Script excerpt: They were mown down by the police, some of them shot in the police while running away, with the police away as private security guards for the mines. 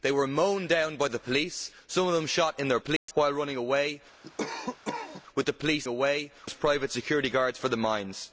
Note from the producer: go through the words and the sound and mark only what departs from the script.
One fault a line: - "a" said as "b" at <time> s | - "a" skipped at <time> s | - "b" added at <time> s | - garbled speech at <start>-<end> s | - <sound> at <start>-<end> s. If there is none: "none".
- dropout at 3.0-3.1 s
- cough at 4.2-5.2 s